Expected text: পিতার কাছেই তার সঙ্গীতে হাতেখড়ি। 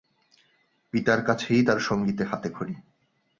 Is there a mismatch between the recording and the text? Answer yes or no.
no